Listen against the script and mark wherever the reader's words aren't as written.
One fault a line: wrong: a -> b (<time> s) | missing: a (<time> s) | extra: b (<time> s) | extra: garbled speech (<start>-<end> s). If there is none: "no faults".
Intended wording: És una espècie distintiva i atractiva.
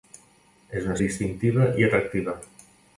missing: espècie (0.9 s)